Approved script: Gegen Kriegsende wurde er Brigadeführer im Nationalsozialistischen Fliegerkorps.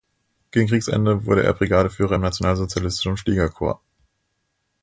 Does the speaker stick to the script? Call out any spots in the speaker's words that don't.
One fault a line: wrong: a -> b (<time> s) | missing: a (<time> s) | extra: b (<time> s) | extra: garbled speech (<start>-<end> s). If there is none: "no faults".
no faults